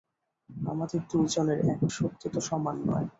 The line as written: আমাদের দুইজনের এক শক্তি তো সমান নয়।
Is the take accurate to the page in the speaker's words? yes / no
yes